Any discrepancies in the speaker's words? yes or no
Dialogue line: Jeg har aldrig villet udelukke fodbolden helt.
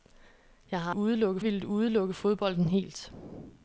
yes